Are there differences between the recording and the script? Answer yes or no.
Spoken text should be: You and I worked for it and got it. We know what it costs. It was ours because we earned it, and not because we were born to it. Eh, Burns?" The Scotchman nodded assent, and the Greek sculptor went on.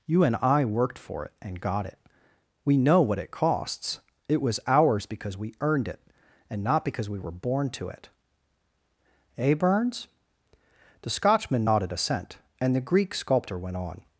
no